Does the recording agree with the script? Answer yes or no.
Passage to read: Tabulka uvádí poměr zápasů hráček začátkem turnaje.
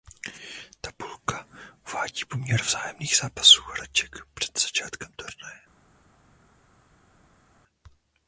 no